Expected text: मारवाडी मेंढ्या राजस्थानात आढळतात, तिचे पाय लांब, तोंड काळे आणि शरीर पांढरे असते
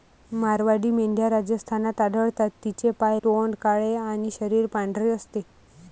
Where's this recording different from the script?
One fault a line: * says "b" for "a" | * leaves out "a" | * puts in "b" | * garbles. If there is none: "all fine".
* leaves out "लांब"